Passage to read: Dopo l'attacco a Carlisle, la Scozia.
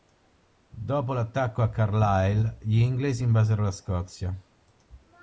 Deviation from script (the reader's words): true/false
true